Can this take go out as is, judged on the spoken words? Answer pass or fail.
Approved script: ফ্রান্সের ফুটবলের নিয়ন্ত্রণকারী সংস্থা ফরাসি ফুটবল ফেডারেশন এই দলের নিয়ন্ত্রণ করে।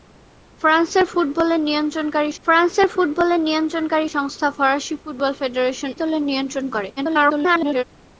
fail